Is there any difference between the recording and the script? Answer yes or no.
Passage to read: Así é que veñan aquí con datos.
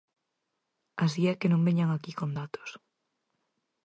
yes